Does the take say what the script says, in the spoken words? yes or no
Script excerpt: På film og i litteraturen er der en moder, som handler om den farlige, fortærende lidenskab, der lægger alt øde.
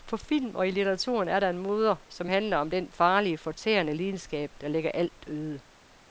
yes